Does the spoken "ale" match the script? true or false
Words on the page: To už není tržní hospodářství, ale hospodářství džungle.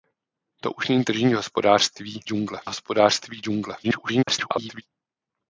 false